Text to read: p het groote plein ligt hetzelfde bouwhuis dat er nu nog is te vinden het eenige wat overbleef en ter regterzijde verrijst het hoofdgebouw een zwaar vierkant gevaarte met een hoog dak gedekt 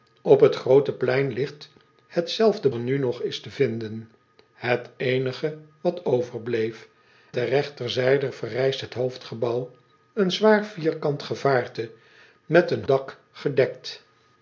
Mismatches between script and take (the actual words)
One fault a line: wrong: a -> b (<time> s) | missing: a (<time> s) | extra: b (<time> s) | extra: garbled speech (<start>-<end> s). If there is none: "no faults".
missing: bouwhuis dat (2.7 s)
missing: en (6.9 s)
missing: hoog (12.8 s)